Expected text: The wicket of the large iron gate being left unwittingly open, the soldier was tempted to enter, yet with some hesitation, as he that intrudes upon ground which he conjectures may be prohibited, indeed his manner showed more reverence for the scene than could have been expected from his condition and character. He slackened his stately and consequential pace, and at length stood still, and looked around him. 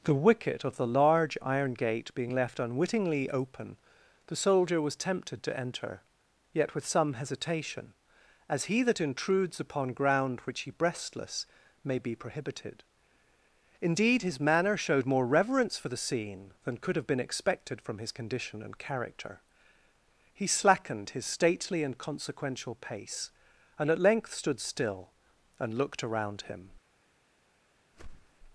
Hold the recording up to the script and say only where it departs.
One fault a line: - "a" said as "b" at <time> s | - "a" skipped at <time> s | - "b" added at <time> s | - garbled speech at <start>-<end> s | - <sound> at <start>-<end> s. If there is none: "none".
- "conjectures" said as "breastless" at 10.7 s
- whoosh at 27.9-28.4 s